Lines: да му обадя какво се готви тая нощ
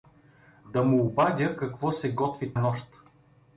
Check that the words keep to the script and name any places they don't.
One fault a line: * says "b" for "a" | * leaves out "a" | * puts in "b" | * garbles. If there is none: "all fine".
* leaves out "тая"